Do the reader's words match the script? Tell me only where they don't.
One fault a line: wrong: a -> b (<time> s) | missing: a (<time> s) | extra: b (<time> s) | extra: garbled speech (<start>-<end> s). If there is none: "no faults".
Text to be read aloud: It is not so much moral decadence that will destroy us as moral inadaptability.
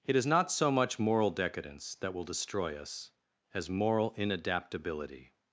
no faults